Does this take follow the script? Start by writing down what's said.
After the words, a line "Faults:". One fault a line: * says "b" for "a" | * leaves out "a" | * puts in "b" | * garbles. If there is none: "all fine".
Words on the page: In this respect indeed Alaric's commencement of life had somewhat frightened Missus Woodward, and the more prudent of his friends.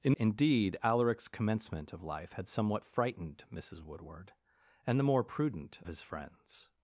In indeed Alaric's commencement of life had somewhat frightened Missus Woodward, and the more prudent his friends.
Faults:
* leaves out "this respect"
* leaves out "of"